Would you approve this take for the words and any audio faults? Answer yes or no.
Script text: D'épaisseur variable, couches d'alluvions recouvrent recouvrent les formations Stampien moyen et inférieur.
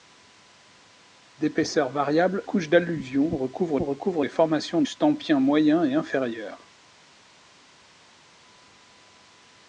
yes